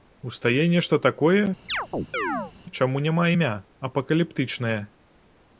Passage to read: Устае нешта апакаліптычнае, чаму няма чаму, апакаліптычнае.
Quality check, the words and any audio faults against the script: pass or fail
fail